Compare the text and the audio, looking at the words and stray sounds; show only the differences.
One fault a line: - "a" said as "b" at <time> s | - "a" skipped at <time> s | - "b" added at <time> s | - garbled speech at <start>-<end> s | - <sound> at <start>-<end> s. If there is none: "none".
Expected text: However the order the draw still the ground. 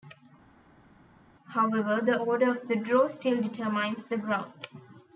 - "of" added at 2.5 s
- "determines" added at 3.4 s